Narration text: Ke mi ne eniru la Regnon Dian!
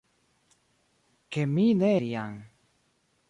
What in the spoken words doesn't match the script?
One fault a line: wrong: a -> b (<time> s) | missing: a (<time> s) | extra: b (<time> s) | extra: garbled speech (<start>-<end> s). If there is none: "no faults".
missing: eniru la Regnon (1.9 s)